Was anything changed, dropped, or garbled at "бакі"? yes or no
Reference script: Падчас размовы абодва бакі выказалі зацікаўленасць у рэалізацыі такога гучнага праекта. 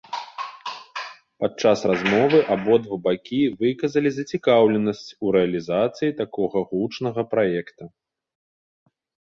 no